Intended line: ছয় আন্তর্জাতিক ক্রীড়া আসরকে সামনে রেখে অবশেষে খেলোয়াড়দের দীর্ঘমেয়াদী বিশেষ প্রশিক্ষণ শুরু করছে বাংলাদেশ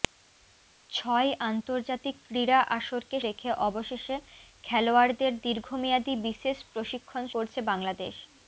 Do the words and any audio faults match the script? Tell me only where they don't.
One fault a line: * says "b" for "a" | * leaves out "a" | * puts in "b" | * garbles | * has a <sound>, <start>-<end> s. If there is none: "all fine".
* leaves out "সামনে"
* leaves out "শুরু"